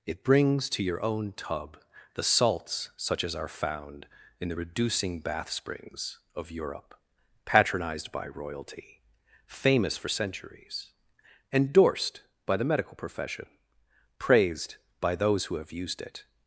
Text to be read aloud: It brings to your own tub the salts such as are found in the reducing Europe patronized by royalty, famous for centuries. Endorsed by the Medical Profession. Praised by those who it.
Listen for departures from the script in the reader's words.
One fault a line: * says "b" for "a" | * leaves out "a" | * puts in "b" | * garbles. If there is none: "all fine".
* puts in "bath springs of"
* puts in "have used"